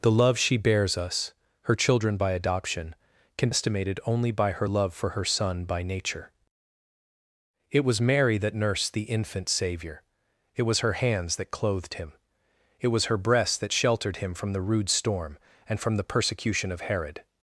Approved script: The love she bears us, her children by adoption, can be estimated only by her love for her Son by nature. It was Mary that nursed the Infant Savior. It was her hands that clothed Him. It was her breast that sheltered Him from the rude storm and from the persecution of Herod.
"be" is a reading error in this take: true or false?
true